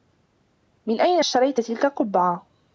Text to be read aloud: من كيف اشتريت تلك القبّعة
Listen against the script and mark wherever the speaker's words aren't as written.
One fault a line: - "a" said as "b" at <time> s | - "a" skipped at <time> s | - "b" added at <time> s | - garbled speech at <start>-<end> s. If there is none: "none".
- "كيف" said as "أين" at 1.0 s